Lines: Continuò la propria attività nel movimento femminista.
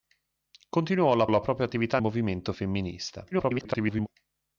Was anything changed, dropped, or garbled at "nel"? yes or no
yes